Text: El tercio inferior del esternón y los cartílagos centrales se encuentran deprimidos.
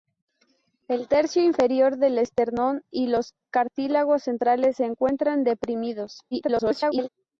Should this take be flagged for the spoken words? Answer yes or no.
yes